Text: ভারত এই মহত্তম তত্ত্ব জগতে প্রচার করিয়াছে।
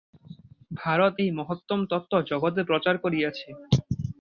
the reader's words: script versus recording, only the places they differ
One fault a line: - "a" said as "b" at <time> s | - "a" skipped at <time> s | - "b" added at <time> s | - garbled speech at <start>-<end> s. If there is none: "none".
none